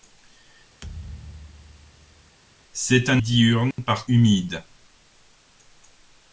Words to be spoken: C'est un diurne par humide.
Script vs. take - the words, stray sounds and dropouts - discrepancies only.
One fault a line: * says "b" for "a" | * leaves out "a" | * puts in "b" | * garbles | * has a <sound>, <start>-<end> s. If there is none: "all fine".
* has a thud, 0.8-2.4 s
* has a dropout, 3.7-3.8 s